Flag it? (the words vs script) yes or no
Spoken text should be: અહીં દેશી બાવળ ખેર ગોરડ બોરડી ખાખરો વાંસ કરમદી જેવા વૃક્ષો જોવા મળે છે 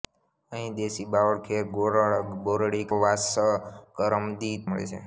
yes